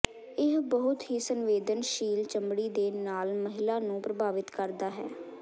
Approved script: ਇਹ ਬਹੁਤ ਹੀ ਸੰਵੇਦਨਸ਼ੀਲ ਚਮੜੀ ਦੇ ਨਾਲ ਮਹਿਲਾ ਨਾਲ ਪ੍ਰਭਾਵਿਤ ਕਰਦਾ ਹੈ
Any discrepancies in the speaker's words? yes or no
yes